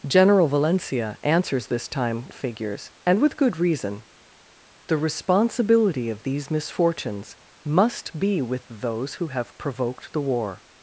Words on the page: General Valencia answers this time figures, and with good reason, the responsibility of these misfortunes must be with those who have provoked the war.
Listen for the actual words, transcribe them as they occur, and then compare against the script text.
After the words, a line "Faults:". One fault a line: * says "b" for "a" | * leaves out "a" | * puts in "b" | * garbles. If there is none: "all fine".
General Valencia answers this time figures, and with good reason, the responsibility of these misfortunes must be with those who have provoked the war.
Faults:
all fine